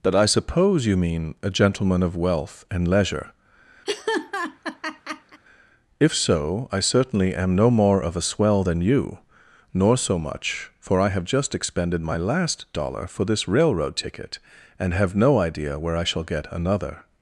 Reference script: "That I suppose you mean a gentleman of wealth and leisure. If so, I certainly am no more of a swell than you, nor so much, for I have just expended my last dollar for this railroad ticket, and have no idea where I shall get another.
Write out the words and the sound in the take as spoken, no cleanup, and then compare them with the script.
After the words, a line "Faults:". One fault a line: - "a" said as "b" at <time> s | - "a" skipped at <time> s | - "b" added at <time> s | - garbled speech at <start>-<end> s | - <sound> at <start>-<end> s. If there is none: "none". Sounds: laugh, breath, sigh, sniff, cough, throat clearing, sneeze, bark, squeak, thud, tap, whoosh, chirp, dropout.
"That I suppose you mean a gentleman of wealth and leisure. If so, I certainly am no more of a swell than you, nor so much, for I have just expended my last dollar for this railroad ticket, and have no idea where I shall get another.
Faults:
- laugh at 3.9-5.4 s